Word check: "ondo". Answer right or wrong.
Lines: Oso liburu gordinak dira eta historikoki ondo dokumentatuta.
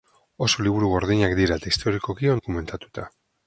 wrong